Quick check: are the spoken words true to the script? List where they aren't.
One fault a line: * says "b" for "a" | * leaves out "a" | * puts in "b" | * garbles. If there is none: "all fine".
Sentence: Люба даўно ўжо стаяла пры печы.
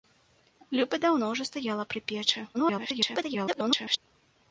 * garbles